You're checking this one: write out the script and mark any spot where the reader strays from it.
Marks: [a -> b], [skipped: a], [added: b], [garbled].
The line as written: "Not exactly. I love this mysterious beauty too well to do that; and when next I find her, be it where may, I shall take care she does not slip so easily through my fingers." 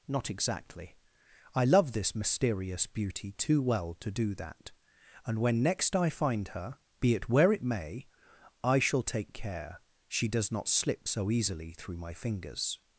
"Not exactly. I love this mysterious beauty too well to do that; and when next I find her, be it where [added: it] may, I shall take care she does not slip so easily through my fingers."